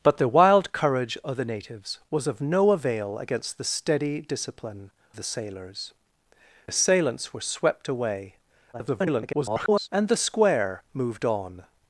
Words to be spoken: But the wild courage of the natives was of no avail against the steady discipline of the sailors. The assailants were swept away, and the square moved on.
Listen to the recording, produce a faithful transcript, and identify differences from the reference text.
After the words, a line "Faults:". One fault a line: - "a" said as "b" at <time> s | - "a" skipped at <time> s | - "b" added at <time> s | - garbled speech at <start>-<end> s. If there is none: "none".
But the wild courage of the natives was of no avail against the steady discipline the sailors. Assailants were swept away, [garbled] and the square moved on.
Faults:
- "of" skipped at 4.9 s
- "The" skipped at 5.9 s
- garbled speech at 8.7-9.9 s